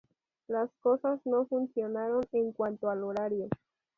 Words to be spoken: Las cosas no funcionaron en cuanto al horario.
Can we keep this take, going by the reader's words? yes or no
yes